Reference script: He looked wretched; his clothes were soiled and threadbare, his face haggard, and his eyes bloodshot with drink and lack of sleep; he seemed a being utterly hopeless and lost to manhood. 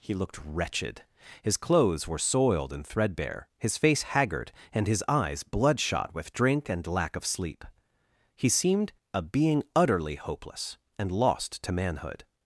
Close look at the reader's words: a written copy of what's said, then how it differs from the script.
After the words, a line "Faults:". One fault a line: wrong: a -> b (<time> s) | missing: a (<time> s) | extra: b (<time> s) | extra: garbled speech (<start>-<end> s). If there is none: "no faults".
He looked wretched; his clothes were soiled and threadbare, his face haggard, and his eyes bloodshot with drink and lack of sleep; he seemed a being utterly hopeless and lost to manhood.
Faults:
no faults